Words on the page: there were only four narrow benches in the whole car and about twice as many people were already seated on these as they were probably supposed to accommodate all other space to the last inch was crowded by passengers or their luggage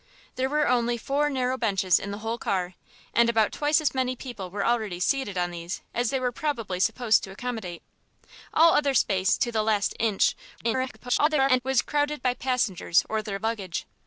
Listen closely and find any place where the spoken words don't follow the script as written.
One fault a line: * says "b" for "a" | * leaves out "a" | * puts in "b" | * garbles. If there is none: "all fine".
* garbles